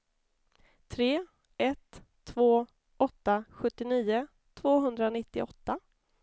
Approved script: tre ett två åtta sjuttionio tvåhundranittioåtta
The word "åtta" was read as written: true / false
true